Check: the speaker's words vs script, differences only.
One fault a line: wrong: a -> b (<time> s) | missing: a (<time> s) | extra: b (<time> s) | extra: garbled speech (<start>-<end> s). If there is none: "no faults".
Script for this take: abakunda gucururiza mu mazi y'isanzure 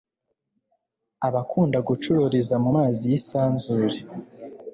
no faults